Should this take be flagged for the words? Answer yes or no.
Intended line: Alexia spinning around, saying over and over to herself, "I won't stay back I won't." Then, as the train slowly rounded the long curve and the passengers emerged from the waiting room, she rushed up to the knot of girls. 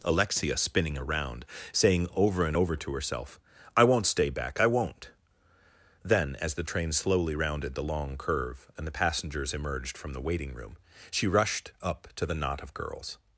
no